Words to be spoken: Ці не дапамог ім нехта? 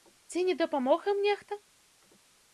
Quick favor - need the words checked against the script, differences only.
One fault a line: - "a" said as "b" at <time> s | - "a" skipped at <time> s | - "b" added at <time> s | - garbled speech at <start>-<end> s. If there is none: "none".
none